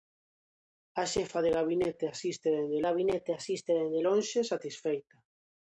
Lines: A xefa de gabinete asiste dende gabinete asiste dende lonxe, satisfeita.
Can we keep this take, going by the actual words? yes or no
yes